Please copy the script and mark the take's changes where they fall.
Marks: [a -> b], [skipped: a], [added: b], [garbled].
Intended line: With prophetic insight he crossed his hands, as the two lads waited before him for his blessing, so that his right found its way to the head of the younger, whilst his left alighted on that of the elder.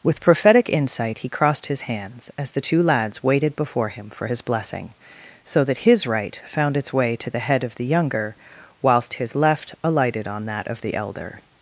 With prophetic insight he crossed his hands, as the two lads waited before him for his blessing, so that his right found its way to the head of the younger, whilst his left alighted on that of the elder.